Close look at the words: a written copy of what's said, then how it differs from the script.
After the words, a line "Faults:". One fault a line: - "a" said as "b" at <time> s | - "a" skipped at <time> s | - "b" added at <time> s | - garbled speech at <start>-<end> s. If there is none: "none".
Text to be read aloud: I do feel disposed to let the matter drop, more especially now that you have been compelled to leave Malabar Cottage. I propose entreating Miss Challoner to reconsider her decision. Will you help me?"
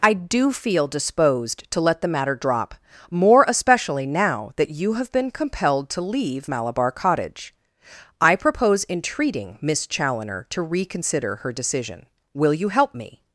I do feel disposed to let the matter drop, more especially now that you have been compelled to leave Malabar Cottage. I propose entreating Miss Challoner to reconsider her decision. Will you help me?"
Faults:
none